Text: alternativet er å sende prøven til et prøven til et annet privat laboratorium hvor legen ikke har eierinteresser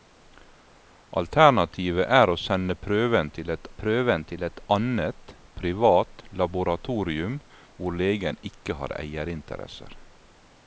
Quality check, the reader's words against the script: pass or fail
pass